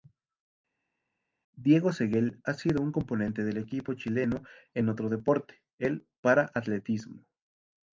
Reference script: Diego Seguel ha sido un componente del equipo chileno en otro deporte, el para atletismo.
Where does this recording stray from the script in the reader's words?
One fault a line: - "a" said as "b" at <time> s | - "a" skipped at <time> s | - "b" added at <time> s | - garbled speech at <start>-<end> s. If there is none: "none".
none